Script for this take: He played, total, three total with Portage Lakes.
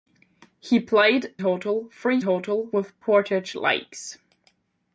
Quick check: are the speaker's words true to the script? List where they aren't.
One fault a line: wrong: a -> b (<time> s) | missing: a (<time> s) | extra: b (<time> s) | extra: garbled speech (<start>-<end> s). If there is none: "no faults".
no faults